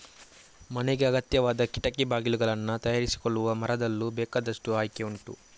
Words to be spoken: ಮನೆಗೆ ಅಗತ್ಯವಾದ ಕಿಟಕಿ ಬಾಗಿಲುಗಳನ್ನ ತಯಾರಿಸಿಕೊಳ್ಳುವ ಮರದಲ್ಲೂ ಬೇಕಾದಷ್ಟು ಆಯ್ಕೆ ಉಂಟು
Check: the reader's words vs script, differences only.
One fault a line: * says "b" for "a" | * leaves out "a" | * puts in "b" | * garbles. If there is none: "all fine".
all fine